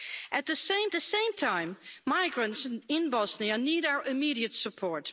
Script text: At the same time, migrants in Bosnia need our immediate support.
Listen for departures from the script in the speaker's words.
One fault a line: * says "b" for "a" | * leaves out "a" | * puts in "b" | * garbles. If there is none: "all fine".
* puts in "the same"